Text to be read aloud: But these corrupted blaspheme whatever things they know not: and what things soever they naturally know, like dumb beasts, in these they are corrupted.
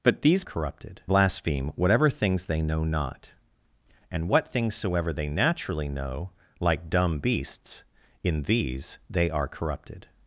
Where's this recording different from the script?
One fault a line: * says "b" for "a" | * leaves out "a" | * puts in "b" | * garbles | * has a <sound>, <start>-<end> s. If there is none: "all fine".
all fine